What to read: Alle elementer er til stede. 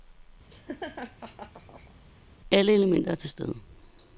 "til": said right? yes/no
yes